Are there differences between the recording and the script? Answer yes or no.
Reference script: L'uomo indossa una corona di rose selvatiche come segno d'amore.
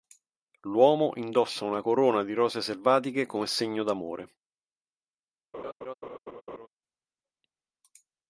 no